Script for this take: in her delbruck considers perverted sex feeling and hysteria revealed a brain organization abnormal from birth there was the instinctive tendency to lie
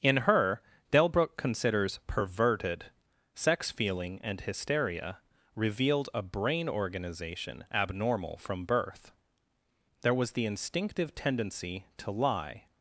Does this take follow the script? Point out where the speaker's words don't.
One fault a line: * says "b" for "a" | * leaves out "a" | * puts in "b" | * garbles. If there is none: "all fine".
all fine